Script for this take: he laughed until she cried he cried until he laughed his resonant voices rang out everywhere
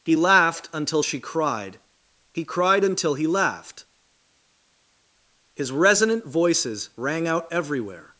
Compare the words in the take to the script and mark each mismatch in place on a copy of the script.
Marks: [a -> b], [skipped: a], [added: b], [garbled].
he laughed until she cried he cried until he laughed his resonant voices rang out everywhere